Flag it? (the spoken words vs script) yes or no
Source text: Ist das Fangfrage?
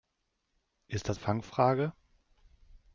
no